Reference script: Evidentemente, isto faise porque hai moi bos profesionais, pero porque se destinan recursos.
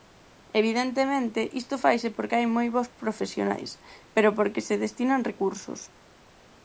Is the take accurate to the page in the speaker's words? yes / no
yes